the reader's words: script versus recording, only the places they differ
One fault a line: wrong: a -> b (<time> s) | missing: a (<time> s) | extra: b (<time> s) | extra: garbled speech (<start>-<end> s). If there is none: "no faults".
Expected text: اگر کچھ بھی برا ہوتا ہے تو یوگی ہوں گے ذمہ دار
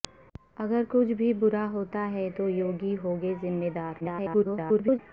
extra: garbled speech (4.0-5.0 s)